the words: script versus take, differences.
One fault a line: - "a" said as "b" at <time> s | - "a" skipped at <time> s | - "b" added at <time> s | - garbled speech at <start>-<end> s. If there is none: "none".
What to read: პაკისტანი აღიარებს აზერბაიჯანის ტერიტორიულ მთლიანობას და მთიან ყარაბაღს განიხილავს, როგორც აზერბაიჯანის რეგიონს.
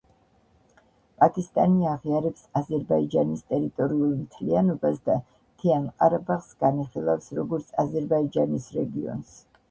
none